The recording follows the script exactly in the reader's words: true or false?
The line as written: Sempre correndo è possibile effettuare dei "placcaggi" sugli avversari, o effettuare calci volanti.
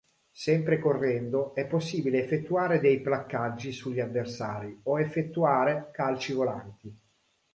true